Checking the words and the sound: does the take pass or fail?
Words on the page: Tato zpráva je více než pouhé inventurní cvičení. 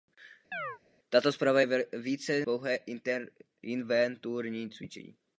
fail